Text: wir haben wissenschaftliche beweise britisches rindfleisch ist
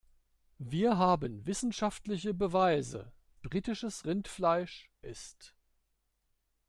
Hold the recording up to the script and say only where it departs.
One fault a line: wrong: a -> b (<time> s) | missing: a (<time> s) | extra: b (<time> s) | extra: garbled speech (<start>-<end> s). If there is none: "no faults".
no faults